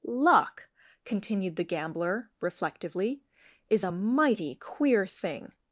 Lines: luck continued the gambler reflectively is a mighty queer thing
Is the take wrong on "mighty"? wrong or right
right